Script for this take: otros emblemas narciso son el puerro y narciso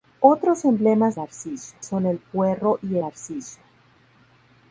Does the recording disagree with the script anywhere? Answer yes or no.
no